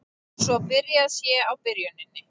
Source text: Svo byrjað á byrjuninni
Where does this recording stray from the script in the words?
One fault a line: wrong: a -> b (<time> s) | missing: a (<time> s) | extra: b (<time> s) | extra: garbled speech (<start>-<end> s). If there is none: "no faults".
extra: sé (1.2 s)